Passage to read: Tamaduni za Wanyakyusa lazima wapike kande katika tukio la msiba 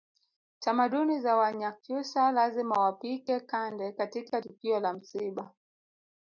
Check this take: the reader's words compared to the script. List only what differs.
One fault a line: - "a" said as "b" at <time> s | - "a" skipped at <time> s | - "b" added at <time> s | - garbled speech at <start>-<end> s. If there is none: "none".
none